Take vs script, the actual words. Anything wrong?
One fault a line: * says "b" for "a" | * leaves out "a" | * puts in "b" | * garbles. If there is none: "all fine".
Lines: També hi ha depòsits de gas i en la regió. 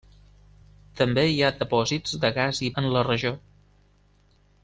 all fine